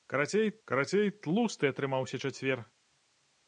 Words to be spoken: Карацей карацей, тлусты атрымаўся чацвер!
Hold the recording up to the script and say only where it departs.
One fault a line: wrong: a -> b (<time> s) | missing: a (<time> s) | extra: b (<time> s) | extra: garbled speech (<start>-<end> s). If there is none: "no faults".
no faults